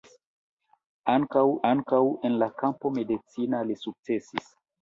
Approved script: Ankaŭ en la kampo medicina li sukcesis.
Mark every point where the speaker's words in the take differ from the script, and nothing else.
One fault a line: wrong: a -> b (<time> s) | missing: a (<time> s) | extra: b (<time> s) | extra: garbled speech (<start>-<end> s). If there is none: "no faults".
extra: ankaŭ (1.7 s)